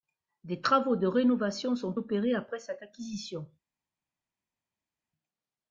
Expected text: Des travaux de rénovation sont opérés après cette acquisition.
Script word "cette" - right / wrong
right